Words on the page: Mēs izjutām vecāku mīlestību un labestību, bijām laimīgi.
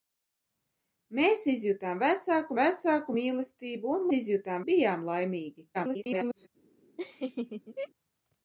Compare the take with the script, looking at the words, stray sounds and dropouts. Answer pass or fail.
fail